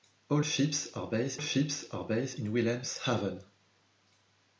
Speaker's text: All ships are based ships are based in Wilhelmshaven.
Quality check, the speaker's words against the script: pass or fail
pass